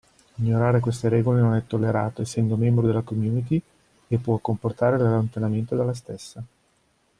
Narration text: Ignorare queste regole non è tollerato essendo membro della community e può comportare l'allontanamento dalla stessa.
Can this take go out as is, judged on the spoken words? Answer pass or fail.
pass